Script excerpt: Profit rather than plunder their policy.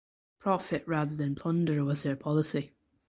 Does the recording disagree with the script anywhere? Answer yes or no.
yes